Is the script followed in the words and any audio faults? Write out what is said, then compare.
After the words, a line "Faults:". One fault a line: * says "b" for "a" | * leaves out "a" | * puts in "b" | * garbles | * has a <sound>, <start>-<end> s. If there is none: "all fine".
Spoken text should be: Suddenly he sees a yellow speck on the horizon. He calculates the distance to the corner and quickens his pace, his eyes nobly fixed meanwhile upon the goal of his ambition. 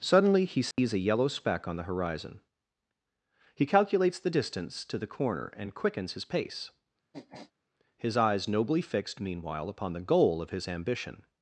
Suddenly he sees a yellow speck on the horizon. He calculates the distance to the corner and quickens his pace, his eyes nobly fixed meanwhile upon the goal of his ambition.
Faults:
* has a dropout, 0.7-0.8 s
* has a sniff, 7.1-7.5 s